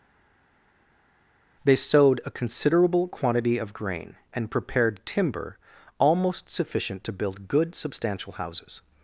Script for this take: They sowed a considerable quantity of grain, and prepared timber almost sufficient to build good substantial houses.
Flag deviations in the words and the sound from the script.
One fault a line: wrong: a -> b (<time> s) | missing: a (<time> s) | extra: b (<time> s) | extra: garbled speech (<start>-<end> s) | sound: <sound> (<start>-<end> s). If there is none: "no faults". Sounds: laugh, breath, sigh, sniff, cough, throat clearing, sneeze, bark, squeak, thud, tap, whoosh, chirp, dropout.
no faults